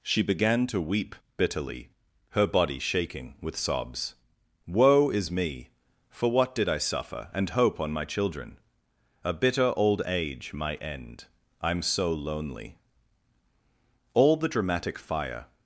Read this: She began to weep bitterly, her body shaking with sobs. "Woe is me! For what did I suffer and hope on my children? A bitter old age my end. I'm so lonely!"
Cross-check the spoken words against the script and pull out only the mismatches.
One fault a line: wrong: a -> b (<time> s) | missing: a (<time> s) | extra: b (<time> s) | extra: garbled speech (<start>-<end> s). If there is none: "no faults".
extra: All the dramatic fire (14.1 s)